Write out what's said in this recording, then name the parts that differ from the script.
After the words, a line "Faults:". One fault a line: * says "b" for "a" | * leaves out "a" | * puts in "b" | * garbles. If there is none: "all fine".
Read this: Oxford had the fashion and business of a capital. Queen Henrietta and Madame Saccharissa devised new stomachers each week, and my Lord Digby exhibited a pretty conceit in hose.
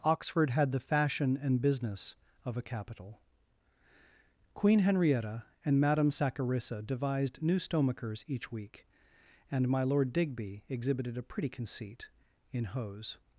Oxford had the fashion and business of a capital. Queen Henrietta and Madame Saccharissa devised new stomachers each week, and my Lord Digby exhibited a pretty conceit in hose.
Faults:
all fine